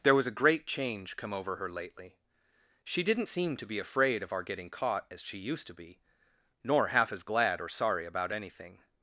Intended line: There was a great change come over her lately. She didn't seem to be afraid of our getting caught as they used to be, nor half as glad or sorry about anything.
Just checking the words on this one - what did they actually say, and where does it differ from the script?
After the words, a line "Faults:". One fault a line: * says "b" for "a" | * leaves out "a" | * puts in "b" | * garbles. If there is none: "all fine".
There was a great change come over her lately. She didn't seem to be afraid of our getting caught as she used to be, nor half as glad or sorry about anything.
Faults:
* says "she" for "they"